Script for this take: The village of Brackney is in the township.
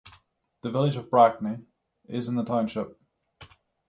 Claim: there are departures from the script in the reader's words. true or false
false